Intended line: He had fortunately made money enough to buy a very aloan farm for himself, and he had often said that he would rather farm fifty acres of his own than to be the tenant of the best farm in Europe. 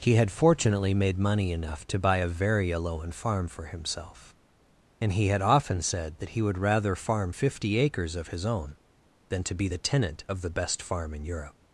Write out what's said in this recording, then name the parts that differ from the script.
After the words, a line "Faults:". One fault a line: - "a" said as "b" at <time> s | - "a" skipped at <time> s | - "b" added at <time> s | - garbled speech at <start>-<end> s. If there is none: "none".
He had fortunately made money enough to buy a very aloan farm for himself, and he had often said that he would rather farm fifty acres of his own than to be the tenant of the best farm in Europe.
Faults:
none